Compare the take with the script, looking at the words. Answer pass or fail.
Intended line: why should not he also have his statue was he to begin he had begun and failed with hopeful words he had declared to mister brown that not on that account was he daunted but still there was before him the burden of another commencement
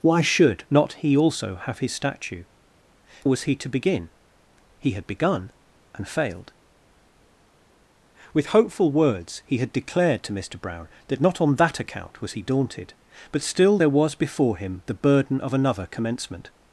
pass